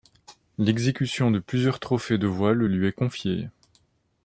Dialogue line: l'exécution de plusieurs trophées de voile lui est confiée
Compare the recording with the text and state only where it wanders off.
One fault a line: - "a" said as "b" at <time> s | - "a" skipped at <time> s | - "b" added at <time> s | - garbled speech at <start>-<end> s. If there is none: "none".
none